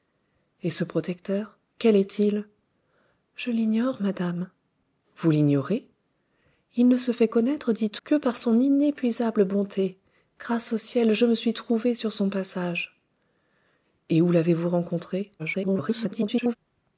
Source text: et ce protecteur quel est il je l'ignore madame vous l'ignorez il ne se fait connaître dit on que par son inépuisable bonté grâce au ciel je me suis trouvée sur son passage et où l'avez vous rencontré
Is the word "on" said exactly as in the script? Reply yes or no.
no